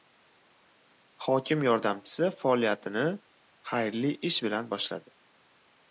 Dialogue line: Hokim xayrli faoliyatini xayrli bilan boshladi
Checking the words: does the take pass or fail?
fail